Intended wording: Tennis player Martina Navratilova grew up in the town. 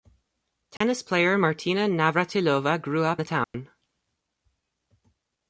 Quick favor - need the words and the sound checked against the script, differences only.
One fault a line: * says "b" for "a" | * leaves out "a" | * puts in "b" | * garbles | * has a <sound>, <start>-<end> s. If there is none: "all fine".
* has a dropout, 0.8-0.8 s
* leaves out "in"
* has a dropout, 3.4-3.5 s